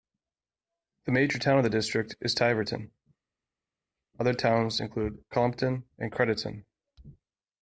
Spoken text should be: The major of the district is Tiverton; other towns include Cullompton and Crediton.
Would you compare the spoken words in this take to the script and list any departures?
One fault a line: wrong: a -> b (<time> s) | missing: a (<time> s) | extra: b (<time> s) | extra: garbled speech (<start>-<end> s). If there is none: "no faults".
extra: town (1.4 s)